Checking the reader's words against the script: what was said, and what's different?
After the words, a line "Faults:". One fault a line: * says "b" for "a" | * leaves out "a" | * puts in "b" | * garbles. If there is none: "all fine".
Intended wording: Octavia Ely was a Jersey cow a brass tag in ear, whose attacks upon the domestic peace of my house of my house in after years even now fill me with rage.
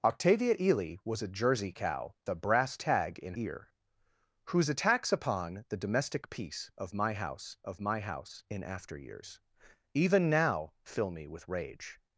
Octavia Ely was a Jersey cow a brass tag in ear, whose attacks upon the domestic peace of my house of my house in after years even now fill me with rage.
Faults:
all fine